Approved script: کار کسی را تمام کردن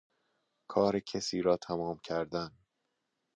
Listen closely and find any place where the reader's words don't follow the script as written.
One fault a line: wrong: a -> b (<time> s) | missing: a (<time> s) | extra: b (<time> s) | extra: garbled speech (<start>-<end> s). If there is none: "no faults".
no faults